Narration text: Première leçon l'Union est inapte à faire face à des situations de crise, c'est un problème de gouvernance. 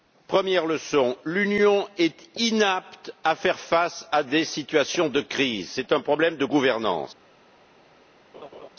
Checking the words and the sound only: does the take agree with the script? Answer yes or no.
no